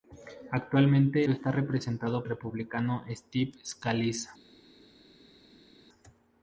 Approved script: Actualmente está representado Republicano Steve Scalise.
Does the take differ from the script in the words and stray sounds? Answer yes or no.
no